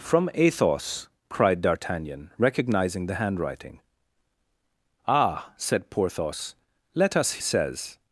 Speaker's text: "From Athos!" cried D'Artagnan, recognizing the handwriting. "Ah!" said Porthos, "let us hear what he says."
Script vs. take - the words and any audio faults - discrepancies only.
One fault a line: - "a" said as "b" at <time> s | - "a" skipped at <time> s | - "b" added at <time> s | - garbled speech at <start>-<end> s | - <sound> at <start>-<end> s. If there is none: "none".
- "hear what he" skipped at 7.4 s